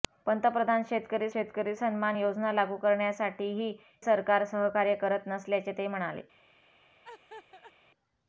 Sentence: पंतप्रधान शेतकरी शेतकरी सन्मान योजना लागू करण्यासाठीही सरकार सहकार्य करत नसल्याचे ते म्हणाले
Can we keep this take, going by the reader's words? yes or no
yes